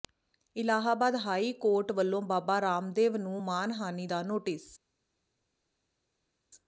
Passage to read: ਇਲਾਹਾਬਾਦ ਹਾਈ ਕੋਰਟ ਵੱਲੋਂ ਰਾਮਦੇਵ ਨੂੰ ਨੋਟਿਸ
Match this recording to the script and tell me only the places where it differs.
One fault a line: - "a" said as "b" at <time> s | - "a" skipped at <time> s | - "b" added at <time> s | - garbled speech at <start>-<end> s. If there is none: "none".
- "ਬਾਬਾ" added at 2.2 s
- "ਮਾਣਹਾਨੀ ਦਾ" added at 3.4 s